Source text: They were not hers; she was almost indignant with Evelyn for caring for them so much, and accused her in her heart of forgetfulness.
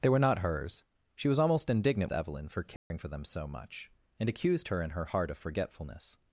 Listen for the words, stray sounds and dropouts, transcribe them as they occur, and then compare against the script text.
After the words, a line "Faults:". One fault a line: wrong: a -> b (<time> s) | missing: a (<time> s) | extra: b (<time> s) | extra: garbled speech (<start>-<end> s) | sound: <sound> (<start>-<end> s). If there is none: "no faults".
They were not hers; she was almost indignant Evelyn for caring for them so much, and accused her in her heart of forgetfulness.
Faults:
missing: with (2.1 s)
sound: dropout (2.8-2.9 s)